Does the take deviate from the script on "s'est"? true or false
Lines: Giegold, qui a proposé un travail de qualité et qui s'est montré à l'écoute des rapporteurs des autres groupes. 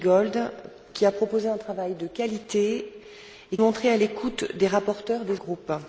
true